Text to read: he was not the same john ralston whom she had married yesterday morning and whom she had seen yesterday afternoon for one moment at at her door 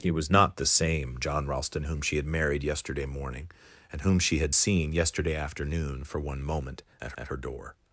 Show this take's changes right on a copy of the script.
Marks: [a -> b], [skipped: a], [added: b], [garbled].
he was not the same john ralston whom she had married yesterday morning and whom she had seen yesterday afternoon for one moment at at her door